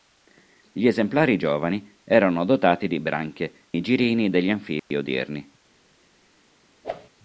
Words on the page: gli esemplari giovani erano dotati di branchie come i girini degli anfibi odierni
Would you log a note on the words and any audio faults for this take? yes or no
yes